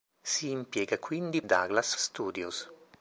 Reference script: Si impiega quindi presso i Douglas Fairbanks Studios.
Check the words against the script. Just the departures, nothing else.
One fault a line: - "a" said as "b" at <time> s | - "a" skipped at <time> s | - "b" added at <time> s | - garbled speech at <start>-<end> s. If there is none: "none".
- "presso" skipped at 1.4 s
- "Fairbanks" skipped at 1.9 s